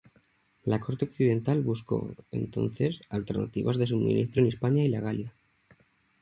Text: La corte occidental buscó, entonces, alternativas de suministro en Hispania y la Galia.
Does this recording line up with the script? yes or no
yes